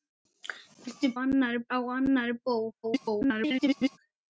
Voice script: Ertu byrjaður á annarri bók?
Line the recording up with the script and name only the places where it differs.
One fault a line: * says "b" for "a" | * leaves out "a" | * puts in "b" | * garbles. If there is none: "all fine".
* says "annarri" for "byrjaður"
* garbles